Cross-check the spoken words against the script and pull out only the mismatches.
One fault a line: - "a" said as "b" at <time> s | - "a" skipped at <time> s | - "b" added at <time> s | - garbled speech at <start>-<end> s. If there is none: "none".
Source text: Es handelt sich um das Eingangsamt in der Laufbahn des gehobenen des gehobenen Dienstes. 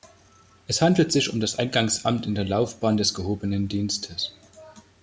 - "des gehobenen" skipped at 3.7 s